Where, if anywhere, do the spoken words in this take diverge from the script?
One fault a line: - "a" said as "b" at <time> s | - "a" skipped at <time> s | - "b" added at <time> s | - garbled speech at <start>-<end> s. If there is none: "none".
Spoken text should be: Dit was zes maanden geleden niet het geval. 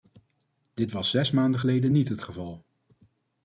none